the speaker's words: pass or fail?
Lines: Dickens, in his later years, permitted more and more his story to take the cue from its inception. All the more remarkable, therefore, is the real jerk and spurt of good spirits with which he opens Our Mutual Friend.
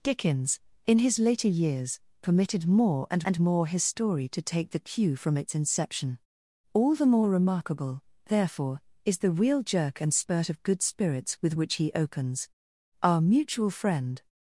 fail